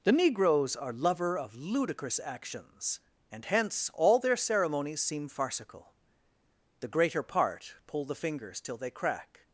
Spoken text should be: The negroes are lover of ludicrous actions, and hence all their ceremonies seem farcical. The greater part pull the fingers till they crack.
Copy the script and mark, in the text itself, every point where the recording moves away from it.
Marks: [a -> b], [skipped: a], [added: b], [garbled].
The negroes are lover of ludicrous actions, and hence all their ceremonies seem farcical. The greater part pull the fingers till they crack.